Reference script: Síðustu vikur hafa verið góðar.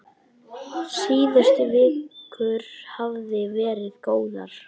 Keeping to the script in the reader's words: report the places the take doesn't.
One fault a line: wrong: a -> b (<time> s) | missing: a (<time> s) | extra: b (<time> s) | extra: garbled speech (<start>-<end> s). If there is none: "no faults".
no faults